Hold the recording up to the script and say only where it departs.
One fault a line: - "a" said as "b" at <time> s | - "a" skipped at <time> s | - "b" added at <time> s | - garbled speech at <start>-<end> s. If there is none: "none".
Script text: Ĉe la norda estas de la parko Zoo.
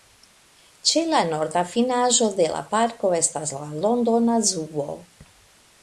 - "estas" said as "finaĵo" at 1.8 s
- "estas la Londona" added at 3.2 s